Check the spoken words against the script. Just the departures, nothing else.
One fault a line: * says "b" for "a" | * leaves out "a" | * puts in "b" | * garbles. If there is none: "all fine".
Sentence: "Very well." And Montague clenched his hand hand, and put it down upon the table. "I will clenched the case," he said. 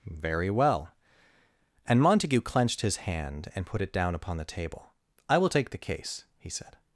* leaves out "hand"
* says "take" for "clenched"